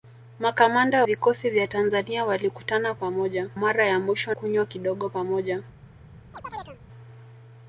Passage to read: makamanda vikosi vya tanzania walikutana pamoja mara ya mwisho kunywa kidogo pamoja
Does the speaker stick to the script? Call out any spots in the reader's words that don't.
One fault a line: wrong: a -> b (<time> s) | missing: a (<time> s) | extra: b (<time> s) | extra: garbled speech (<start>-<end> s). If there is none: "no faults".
no faults